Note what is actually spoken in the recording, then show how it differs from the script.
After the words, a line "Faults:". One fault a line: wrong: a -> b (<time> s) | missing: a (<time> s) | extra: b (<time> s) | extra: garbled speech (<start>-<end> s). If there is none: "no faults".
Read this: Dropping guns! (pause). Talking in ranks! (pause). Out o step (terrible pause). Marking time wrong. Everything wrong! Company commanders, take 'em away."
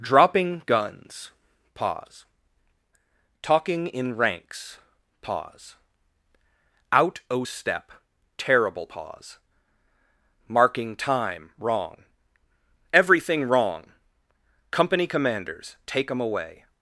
Dropping guns! (pause). Talking in ranks! (pause). Out o step (terrible pause). Marking time wrong. Everything wrong! Company commanders, take 'em away."
Faults:
no faults